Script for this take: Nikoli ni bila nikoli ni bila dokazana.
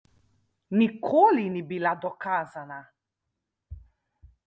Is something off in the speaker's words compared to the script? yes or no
yes